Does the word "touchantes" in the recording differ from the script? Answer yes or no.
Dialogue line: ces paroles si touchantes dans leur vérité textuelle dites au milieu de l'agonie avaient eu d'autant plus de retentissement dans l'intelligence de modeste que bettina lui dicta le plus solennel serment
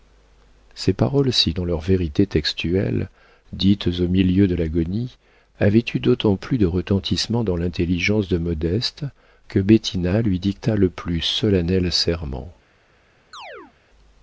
yes